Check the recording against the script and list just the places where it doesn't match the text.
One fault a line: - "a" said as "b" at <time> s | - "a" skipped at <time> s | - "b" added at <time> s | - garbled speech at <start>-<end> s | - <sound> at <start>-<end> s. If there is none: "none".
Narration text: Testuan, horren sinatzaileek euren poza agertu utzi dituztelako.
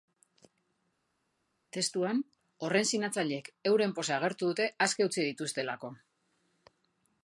- "dute aske" added at 4.5 s